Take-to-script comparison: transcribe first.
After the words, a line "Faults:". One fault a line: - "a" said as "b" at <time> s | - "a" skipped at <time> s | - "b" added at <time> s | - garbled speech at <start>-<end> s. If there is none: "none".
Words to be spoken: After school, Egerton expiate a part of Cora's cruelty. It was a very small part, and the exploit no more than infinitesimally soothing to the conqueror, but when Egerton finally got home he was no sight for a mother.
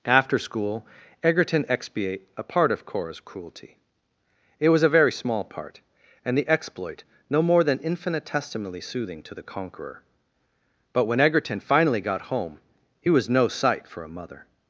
After school, Egerton expiate a part of Cora's cruelty. It was a very small part, and the exploit no more than infinitesimally soothing to the conqueror, but when Egerton finally got home he was no sight for a mother.
Faults:
none